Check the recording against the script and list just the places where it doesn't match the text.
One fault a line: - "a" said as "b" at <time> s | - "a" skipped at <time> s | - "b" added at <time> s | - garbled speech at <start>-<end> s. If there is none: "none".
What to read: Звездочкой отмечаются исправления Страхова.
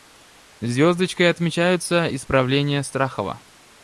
none